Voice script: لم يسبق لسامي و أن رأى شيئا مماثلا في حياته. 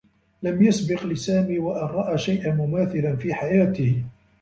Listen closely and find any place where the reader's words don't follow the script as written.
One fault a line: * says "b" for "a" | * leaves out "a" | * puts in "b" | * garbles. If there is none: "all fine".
all fine